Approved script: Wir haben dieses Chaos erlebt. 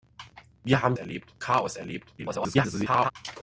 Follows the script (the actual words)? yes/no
no